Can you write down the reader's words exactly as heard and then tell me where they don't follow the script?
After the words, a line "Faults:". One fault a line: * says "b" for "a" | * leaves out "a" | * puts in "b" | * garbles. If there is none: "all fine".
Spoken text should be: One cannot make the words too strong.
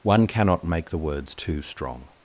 One cannot make the words too strong.
Faults:
all fine